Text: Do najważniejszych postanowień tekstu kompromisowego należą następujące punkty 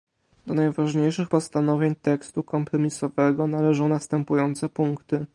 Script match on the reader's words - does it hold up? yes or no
yes